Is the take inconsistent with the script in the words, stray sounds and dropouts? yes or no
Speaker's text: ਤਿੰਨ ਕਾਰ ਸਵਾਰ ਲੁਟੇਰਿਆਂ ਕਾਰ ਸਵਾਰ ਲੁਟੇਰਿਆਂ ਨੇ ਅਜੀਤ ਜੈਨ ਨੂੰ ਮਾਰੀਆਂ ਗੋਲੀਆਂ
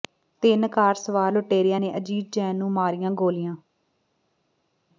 yes